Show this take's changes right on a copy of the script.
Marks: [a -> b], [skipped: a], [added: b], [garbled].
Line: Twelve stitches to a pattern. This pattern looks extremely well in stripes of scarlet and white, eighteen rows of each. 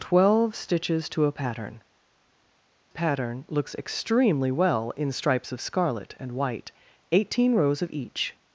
Twelve stitches to a pattern. [skipped: This] pattern looks extremely well in stripes of scarlet and white, eighteen rows of each.